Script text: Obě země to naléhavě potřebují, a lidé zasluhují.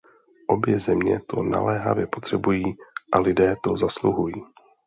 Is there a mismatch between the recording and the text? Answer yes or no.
yes